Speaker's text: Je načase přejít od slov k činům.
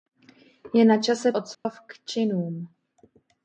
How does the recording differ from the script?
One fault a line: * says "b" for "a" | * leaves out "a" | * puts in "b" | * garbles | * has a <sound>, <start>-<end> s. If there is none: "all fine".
* leaves out "přejít"
* has a dropout, 1.5-1.7 s